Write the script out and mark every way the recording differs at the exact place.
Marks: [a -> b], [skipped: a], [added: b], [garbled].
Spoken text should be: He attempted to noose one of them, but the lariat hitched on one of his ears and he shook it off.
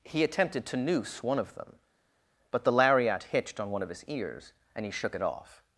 He attempted to noose one of them, but the lariat hitched on one of his ears and he shook it off.